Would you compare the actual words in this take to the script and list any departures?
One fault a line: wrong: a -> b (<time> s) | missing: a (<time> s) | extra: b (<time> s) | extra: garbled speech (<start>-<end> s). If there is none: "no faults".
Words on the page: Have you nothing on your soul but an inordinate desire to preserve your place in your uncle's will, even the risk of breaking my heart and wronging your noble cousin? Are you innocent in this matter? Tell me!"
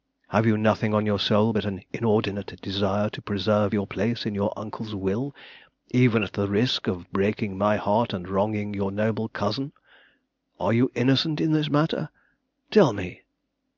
extra: at (6.2 s)